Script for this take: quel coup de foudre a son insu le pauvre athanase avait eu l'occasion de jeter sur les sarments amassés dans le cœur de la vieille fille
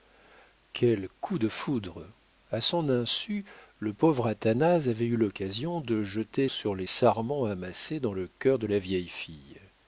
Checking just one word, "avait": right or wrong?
right